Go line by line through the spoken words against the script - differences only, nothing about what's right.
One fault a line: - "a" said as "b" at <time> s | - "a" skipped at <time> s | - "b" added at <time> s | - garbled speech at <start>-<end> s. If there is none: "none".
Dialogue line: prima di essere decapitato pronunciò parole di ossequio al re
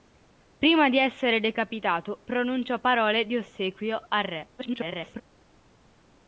- garbled speech at 4.6-5.2 s